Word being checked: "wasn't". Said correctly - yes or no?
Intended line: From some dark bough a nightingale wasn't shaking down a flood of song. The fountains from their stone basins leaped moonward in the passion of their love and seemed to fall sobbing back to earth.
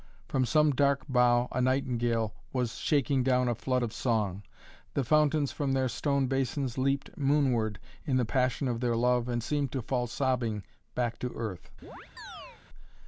no